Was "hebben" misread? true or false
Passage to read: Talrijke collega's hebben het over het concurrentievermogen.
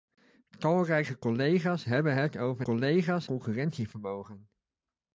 false